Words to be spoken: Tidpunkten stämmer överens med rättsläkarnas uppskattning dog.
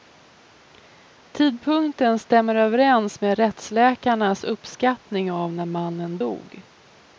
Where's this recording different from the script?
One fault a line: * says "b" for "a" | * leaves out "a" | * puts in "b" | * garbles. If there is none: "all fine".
* puts in "av när mannen"